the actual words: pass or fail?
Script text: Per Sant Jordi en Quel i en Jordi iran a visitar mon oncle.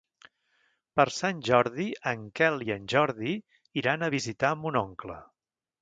pass